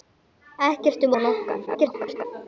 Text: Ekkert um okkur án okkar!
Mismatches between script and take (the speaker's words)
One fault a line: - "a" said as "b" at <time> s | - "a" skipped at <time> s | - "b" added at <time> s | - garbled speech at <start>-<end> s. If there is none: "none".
- "okkur" skipped at 1.1 s
- garbled speech at 1.7-2.3 s